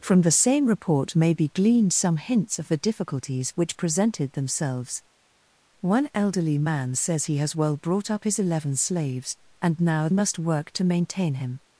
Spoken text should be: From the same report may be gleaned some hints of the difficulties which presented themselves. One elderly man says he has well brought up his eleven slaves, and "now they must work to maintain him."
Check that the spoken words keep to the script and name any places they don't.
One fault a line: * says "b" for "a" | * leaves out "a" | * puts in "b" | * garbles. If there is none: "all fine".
* leaves out "they"